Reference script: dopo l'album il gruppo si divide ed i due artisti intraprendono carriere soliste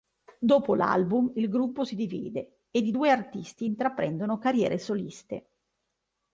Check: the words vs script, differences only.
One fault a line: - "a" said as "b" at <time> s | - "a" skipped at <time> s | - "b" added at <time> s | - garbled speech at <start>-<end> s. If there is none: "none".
none